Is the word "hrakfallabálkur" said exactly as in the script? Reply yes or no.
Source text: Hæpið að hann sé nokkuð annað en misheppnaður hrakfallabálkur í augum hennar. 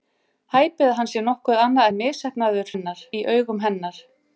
no